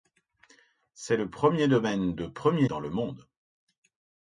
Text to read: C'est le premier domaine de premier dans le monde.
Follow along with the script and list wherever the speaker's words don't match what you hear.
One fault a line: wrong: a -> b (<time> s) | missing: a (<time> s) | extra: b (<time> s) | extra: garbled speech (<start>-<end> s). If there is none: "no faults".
no faults